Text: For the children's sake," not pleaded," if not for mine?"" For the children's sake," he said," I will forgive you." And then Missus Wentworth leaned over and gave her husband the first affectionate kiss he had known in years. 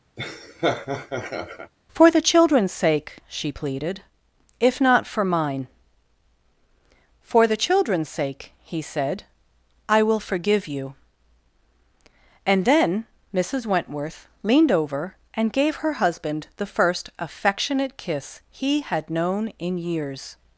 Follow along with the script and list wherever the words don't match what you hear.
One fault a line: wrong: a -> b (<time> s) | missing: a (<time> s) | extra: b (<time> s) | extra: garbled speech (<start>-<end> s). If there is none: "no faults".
wrong: not -> she (3.3 s)